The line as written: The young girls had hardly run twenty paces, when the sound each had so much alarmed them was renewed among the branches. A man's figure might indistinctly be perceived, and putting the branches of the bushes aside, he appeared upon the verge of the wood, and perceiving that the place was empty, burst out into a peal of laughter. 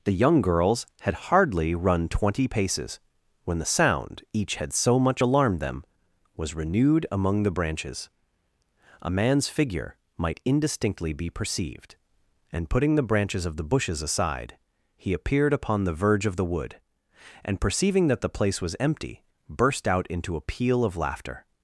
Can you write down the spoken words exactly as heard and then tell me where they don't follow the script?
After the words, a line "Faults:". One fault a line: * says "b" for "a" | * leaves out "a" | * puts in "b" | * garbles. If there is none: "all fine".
The young girls had hardly run twenty paces, when the sound each had so much alarmed them was renewed among the branches. A man's figure might indistinctly be perceived, and putting the branches of the bushes aside, he appeared upon the verge of the wood, and perceiving that the place was empty, burst out into a peal of laughter.
Faults:
all fine